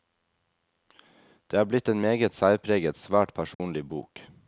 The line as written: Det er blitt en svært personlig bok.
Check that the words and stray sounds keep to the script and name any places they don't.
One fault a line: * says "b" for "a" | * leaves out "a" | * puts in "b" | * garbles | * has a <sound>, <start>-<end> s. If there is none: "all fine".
* puts in "meget særpreget"
* has a dropout, 3.5-3.6 s